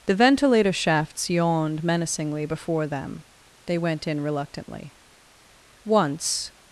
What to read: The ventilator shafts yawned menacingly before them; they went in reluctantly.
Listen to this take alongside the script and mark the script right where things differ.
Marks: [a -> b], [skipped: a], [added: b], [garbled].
The ventilator shafts yawned menacingly before them; they went in reluctantly. [added: Once]